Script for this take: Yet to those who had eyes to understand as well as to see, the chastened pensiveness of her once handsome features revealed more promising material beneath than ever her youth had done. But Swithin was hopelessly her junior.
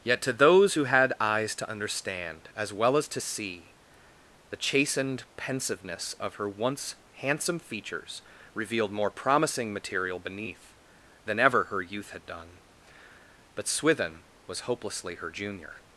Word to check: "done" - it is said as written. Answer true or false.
true